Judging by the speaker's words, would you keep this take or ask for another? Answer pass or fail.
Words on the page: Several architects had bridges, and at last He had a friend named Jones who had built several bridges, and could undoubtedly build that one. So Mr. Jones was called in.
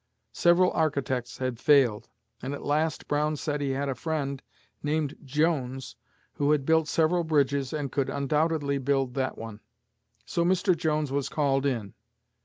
fail